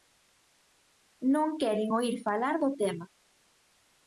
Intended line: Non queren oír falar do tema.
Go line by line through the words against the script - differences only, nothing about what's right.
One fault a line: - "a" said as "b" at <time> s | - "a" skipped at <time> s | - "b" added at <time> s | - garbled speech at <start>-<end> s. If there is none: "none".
none